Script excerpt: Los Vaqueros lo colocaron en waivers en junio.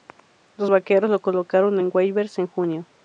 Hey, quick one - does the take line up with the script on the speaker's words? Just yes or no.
yes